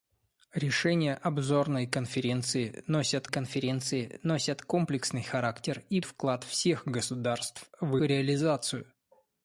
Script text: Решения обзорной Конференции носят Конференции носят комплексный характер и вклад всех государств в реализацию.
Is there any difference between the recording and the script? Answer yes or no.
no